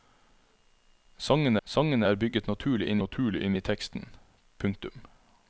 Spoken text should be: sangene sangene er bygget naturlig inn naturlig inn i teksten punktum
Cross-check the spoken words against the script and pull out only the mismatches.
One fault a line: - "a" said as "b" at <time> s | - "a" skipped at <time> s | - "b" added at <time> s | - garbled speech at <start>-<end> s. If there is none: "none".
none